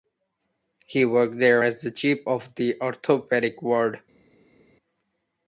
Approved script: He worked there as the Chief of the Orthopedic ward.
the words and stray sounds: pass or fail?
pass